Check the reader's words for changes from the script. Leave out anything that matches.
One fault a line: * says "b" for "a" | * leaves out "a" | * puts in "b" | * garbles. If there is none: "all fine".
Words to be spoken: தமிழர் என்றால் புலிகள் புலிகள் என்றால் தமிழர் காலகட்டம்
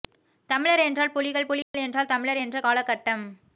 * puts in "என்ற"